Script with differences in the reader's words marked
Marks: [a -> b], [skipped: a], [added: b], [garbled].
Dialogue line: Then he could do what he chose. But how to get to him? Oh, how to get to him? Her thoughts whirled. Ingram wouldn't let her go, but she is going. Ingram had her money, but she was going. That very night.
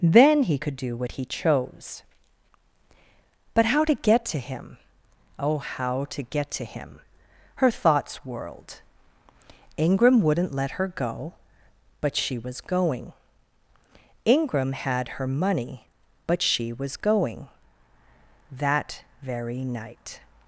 Then he could do what he chose. But how to get to him? Oh, how to get to him? Her thoughts whirled. Ingram wouldn't let her go, but she [is -> was] going. Ingram had her money, but she was going. That very night.